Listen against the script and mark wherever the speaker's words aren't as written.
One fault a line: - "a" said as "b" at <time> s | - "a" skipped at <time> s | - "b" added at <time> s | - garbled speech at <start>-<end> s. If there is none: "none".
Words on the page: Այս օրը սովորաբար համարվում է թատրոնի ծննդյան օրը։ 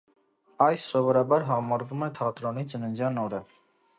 - "օրը" skipped at 0.8 s